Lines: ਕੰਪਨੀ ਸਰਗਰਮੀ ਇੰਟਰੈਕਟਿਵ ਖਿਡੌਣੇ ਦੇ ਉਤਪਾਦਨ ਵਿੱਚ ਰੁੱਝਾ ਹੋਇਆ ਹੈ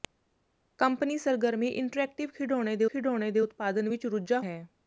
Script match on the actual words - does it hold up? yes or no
no